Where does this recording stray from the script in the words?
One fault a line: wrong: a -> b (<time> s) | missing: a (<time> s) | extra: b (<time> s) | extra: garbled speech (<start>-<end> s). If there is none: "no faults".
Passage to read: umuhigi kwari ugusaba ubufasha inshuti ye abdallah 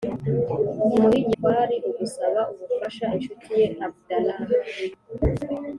no faults